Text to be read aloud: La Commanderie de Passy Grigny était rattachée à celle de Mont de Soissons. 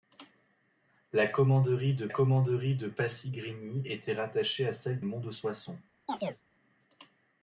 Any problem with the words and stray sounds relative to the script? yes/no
yes